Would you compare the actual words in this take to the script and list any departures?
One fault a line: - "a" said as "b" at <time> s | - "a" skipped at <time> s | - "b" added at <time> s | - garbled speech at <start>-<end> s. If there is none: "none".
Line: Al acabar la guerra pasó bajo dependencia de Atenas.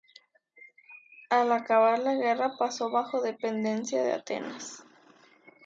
none